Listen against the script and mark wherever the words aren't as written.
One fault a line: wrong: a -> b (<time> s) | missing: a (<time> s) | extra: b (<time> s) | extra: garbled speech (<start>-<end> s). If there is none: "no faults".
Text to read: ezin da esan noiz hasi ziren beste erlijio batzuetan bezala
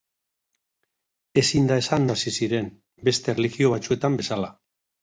missing: noiz (2.1 s)